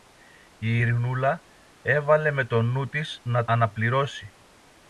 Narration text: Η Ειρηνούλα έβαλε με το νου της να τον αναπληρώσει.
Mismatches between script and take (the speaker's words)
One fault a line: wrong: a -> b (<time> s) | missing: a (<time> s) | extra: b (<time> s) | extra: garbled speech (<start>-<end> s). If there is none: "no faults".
missing: τον (3.5 s)